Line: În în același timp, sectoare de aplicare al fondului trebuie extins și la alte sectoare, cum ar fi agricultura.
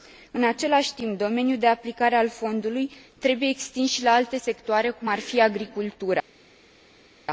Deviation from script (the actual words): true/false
true